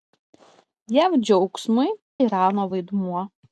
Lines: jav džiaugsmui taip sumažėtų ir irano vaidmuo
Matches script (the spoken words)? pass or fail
fail